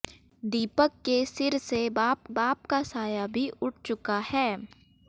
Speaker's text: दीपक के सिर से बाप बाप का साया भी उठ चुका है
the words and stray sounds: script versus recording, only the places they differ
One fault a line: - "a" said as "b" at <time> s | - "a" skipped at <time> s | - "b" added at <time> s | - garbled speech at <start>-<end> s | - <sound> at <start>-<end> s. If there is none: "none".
none